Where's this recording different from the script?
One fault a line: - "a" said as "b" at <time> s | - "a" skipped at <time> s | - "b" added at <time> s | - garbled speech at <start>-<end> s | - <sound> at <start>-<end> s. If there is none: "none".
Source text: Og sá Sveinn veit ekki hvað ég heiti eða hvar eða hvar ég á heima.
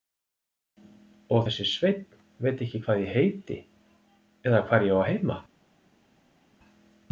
- "sá" said as "þessi" at 1.4 s
- "eða hvar" skipped at 4.8 s